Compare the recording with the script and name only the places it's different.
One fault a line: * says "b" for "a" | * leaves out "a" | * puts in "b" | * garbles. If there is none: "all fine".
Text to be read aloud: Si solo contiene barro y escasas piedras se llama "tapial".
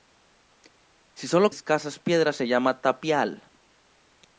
* leaves out "contiene barro y"